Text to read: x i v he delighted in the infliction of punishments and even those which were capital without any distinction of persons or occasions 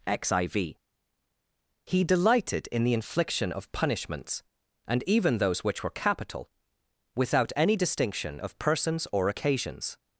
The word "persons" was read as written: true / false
true